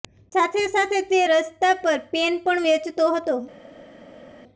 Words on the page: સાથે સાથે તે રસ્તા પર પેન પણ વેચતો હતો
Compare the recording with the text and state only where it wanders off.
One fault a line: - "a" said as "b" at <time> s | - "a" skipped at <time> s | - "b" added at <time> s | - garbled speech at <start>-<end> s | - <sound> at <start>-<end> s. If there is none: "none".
none